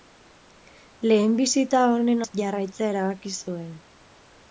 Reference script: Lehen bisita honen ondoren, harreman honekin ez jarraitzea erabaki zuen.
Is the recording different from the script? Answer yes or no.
yes